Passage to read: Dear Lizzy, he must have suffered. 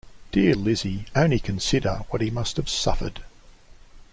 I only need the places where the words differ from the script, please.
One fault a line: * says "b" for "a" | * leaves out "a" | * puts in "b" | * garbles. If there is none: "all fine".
* puts in "only consider what"